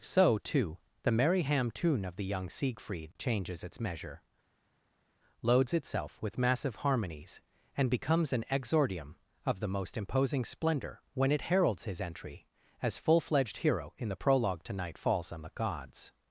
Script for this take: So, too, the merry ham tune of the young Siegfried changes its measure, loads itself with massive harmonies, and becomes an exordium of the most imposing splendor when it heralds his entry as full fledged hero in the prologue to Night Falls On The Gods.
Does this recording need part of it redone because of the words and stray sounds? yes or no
no